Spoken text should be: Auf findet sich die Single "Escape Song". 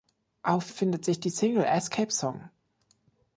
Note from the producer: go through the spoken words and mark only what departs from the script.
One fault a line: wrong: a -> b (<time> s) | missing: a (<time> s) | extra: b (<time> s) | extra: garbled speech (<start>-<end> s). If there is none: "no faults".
no faults